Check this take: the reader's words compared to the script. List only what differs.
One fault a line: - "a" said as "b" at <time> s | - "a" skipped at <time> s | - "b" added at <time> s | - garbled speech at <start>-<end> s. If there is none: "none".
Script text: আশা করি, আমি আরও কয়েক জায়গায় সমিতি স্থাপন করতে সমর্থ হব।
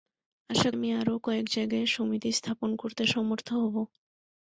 - "করি" skipped at 0.7 s